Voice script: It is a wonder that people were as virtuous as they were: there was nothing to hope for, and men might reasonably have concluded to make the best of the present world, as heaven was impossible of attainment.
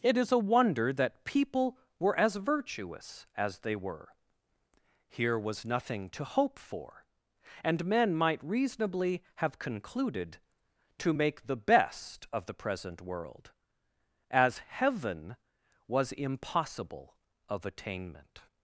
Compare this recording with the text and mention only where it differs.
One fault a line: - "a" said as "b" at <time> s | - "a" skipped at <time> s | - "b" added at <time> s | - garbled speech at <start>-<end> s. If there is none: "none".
- "there" said as "here" at 5.1 s